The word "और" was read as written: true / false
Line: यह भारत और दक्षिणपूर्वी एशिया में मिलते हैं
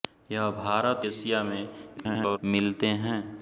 false